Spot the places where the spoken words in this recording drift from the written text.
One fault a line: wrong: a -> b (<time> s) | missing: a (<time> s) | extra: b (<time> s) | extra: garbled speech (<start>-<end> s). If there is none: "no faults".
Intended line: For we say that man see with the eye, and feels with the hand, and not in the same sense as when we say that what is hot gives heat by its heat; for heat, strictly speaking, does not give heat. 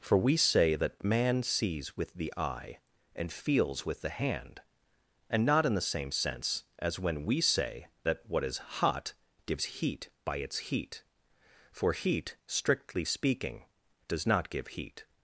wrong: see -> sees (1.4 s)